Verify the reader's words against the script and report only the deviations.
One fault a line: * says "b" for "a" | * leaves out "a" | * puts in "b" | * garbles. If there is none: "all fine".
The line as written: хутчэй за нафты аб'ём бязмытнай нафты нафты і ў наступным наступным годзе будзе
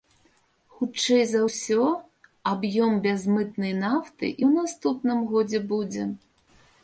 * says "ўсё" for "нафты"
* leaves out "нафты"
* leaves out "наступным"